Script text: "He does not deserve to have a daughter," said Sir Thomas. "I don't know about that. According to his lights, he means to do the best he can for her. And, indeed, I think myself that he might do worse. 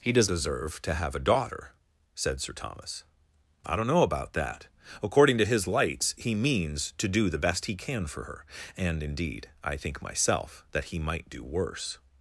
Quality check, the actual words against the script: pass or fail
fail